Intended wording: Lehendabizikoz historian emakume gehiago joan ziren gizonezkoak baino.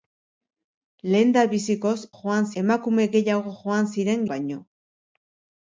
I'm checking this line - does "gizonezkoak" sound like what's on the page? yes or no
no